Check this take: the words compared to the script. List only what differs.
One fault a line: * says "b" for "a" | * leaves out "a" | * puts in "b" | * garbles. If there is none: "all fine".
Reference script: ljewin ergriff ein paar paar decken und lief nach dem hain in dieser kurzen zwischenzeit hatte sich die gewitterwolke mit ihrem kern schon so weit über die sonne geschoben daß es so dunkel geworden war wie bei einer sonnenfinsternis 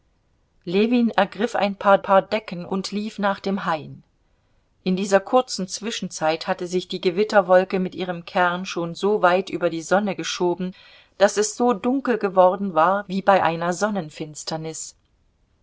all fine